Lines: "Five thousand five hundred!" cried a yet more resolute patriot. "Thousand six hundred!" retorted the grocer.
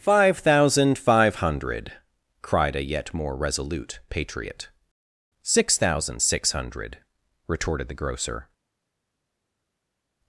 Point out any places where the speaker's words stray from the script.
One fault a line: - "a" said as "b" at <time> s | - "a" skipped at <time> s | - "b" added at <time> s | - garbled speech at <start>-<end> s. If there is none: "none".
- "Six" added at 5.4 s